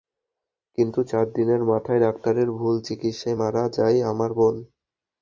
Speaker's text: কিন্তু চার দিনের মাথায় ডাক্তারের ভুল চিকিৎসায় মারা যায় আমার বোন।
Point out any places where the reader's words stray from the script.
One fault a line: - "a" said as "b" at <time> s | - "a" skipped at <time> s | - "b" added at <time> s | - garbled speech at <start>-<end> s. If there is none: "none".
none